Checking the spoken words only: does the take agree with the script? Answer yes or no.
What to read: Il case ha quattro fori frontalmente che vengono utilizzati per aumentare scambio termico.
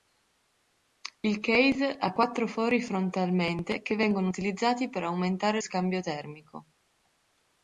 yes